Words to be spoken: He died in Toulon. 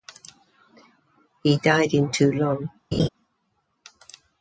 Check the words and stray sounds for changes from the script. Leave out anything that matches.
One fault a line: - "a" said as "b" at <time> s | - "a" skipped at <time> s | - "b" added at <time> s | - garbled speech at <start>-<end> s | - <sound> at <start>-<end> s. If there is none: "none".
- laugh at 2.9-3.1 s